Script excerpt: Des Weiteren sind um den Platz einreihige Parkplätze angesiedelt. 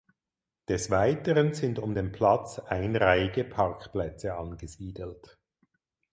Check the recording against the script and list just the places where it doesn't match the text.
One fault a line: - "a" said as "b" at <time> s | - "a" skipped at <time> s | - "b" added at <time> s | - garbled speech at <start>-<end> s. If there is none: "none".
none